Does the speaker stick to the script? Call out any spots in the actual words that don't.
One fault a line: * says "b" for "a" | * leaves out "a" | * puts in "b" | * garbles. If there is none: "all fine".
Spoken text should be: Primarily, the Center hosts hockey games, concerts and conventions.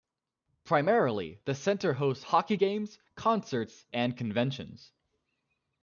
all fine